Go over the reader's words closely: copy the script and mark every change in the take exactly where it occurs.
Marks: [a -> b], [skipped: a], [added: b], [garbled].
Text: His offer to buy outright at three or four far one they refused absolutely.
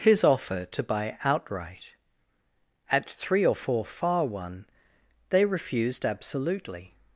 His offer to buy outright at three or four far one they refused absolutely.